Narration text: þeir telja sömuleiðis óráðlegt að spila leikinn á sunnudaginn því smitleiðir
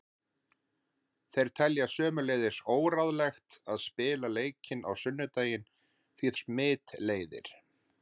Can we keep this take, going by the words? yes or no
yes